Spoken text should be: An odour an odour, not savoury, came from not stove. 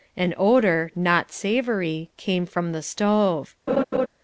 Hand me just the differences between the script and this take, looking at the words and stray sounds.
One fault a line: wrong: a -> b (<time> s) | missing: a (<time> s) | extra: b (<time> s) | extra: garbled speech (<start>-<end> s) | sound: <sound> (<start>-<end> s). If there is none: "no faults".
missing: an odour (0.9 s)
wrong: not -> the (2.7 s)
sound: laugh (3.7-4.1 s)